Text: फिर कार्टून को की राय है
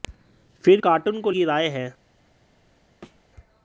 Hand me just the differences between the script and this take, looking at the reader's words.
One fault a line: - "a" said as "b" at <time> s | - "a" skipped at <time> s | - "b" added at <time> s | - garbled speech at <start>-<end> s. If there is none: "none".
none